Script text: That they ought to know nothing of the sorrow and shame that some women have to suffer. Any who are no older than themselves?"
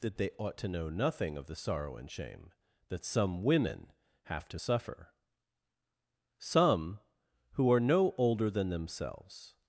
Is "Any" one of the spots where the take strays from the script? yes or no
yes